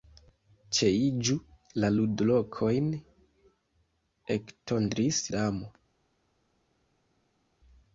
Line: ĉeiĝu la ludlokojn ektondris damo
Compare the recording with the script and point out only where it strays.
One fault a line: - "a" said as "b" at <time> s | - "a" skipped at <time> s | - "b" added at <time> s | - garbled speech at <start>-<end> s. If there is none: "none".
none